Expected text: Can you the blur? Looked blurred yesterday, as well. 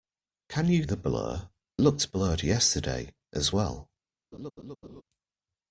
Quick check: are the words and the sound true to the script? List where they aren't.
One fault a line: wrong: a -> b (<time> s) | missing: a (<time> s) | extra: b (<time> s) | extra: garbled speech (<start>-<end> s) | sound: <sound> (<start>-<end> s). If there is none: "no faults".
sound: laugh (4.3-5.0 s)